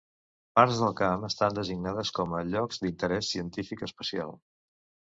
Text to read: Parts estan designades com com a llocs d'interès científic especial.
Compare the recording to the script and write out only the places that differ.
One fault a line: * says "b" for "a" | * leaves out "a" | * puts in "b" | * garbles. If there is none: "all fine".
* puts in "del camp"
* leaves out "com"